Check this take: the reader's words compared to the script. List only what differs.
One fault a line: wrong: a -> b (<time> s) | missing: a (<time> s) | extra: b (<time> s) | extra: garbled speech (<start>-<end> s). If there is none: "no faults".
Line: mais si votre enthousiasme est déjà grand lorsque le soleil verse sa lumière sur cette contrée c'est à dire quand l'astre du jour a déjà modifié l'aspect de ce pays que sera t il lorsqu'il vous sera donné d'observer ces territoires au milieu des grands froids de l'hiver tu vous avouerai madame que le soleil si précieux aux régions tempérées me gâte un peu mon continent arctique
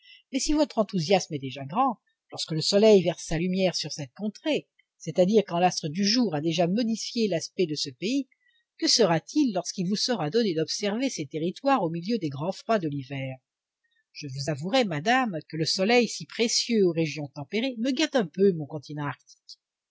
wrong: tu -> je (14.1 s)